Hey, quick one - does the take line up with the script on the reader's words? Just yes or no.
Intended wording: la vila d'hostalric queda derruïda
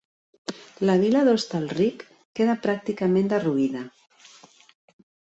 no